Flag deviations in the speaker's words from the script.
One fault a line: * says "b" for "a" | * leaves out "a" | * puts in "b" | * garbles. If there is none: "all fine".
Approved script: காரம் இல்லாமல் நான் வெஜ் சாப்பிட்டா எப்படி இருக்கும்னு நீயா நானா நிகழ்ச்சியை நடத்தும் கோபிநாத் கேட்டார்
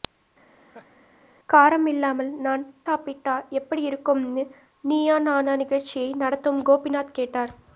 * leaves out "வெஜ்"